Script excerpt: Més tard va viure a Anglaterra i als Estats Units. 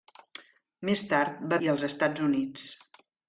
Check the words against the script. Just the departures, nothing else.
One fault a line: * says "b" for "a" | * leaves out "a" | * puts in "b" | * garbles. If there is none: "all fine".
* leaves out "viure a Anglaterra"